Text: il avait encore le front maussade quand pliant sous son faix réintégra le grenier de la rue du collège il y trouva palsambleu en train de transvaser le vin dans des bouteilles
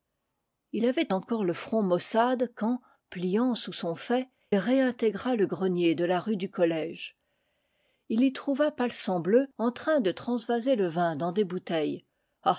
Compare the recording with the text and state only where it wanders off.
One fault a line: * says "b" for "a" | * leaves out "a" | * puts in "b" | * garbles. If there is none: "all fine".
all fine